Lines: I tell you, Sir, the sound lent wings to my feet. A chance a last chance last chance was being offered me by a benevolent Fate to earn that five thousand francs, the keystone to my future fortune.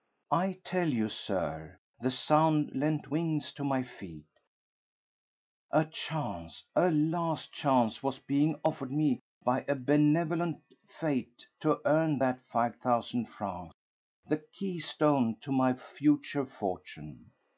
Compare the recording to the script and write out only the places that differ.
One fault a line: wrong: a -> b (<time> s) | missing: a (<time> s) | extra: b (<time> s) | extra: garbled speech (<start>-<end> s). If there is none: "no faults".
missing: last chance (8.0 s)